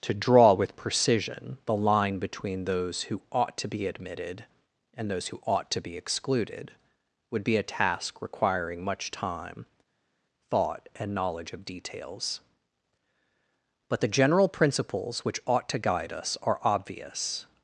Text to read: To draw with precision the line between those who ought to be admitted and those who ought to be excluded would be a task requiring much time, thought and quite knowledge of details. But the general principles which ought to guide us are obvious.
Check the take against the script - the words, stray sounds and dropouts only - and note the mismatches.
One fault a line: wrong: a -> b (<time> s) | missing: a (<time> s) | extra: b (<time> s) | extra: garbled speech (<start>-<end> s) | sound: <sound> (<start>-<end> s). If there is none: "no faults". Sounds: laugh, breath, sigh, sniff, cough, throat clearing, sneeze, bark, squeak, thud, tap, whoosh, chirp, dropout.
missing: quite (11.1 s)